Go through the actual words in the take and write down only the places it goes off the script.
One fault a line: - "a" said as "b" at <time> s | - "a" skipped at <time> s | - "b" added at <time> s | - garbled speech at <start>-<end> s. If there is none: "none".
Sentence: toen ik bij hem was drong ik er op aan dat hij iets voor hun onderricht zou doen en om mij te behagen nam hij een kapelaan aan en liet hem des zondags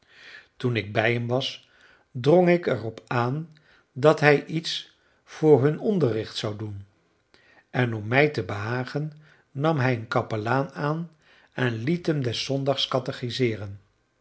none